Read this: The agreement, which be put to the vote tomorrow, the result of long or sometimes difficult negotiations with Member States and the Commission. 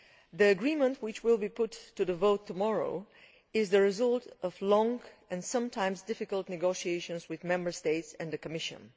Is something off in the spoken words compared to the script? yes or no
yes